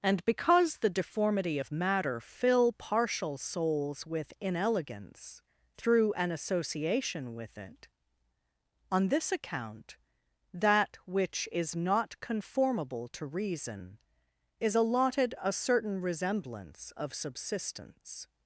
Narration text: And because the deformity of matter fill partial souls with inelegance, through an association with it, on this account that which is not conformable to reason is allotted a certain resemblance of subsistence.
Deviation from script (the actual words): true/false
false